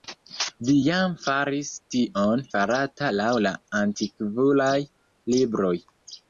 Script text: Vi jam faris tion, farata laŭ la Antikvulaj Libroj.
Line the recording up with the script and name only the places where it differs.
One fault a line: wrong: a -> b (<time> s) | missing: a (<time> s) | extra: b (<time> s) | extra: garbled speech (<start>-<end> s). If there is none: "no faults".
no faults